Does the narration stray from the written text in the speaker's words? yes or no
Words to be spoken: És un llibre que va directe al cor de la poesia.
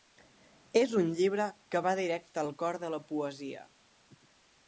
no